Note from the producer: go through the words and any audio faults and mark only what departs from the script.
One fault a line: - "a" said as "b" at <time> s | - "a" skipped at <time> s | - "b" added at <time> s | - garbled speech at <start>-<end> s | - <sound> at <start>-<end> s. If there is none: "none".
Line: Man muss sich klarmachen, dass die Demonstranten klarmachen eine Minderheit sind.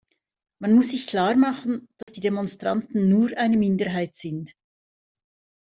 - dropout at 2.0-2.1 s
- "klarmachen" said as "nur" at 3.1 s